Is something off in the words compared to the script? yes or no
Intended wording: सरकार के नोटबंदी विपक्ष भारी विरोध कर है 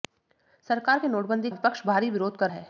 no